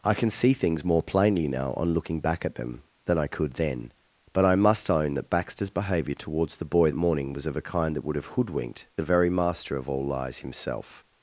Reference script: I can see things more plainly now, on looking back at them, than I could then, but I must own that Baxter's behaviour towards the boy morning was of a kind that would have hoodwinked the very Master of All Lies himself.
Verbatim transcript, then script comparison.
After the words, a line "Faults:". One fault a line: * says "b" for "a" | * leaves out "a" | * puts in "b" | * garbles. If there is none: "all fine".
I can see things more plainly now, on looking back at them, than I could then, but I must own that Baxter's behaviour towards the boy morning was of a kind that would have hoodwinked the very Master of All Lies himself.
Faults:
all fine